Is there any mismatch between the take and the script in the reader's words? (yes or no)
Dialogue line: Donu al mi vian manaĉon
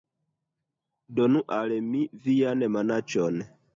no